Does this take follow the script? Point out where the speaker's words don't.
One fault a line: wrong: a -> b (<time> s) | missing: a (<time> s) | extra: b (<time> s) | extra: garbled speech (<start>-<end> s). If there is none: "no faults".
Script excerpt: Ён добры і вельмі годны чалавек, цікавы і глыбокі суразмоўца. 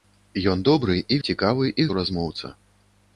missing: вельмі годны чалавек (1.2 s)
missing: глыбокі (1.9 s)